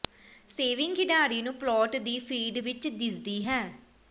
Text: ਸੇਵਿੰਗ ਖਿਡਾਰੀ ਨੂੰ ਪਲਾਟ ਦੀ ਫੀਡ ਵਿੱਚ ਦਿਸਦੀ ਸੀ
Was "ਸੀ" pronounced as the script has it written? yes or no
no